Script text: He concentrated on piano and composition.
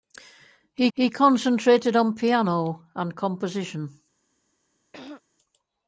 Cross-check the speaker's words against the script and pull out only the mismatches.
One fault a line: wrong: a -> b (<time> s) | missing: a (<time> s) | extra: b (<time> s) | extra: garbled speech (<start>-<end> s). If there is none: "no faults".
extra: he (0.9 s)